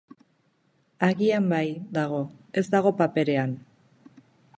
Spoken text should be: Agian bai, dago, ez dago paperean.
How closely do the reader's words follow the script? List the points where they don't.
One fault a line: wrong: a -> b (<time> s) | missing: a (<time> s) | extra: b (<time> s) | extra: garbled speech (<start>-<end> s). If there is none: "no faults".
no faults